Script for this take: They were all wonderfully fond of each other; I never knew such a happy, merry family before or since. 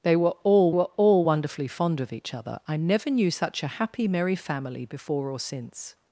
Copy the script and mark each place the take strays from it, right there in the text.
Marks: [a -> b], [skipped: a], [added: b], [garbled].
They were all [added: were all] wonderfully fond of each other; I never knew such a happy, merry family before or since.